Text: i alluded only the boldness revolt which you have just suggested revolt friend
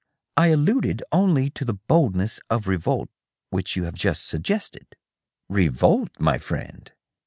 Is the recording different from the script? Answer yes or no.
yes